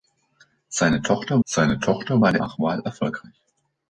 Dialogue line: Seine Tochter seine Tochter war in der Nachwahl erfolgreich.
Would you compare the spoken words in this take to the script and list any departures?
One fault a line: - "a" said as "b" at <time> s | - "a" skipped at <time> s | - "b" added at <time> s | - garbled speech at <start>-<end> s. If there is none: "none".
none